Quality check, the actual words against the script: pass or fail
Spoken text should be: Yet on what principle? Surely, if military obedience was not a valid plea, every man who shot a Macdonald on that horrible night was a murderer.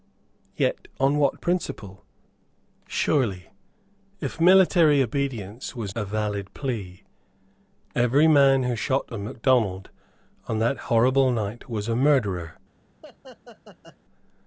fail